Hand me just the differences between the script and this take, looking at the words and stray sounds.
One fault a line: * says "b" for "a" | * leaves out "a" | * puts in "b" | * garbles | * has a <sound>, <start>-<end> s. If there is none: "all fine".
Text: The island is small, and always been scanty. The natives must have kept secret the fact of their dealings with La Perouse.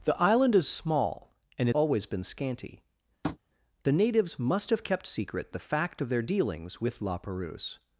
* has a tap, 3.2-3.4 s